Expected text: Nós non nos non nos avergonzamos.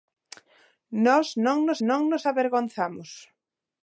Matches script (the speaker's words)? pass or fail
pass